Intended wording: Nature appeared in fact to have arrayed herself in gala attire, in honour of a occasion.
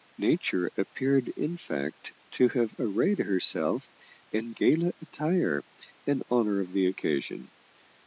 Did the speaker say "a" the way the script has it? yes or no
no